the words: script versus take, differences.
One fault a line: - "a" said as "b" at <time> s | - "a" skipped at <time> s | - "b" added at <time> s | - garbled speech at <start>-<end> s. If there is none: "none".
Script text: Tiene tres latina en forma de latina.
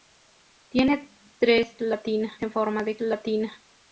none